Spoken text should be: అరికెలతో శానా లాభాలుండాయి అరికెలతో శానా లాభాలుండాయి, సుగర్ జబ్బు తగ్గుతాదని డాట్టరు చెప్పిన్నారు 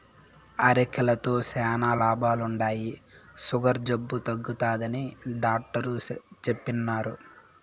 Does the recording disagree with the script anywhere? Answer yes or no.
yes